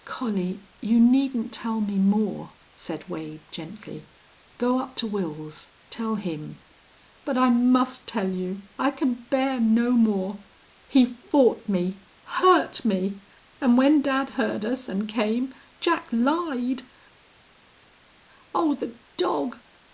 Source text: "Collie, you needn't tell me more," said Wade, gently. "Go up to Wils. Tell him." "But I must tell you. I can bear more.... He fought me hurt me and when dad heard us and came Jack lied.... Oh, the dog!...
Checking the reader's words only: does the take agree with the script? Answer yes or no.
no